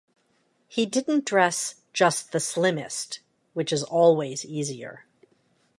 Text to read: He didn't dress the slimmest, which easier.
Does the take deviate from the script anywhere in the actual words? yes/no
yes